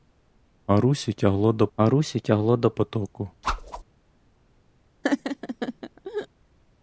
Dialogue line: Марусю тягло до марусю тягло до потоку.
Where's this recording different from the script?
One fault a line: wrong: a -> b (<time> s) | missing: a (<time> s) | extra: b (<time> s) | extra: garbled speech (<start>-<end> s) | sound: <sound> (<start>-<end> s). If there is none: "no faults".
sound: whoosh (3.4-3.8 s)
sound: laugh (5.0-6.3 s)